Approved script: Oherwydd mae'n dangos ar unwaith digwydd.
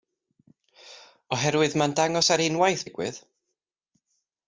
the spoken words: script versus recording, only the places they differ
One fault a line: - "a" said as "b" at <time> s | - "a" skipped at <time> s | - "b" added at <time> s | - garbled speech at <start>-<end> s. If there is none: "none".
none